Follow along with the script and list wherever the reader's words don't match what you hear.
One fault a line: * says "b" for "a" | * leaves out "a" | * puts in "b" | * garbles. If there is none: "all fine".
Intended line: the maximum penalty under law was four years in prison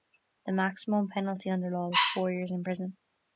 all fine